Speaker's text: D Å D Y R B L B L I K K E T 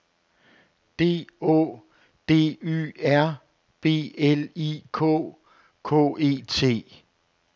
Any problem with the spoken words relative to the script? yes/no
yes